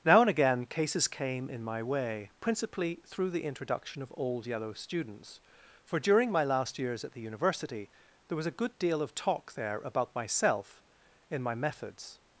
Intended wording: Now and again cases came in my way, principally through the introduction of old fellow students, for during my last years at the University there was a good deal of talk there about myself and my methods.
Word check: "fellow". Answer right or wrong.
wrong